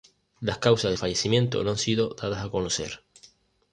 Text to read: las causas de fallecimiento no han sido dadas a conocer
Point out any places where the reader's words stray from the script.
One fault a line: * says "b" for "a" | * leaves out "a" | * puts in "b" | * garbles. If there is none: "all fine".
all fine